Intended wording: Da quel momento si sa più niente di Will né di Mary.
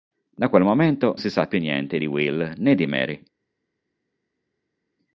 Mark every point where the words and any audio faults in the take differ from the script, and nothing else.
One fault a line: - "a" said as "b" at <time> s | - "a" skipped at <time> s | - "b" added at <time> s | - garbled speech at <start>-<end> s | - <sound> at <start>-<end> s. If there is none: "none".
none